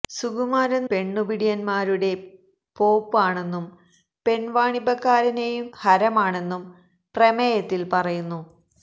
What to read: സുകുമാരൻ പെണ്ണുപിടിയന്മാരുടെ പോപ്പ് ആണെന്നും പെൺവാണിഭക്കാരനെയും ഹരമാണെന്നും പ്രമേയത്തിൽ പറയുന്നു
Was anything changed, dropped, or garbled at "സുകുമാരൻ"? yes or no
no